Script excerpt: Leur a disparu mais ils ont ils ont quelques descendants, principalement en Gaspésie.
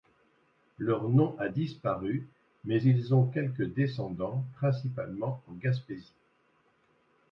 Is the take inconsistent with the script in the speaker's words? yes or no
yes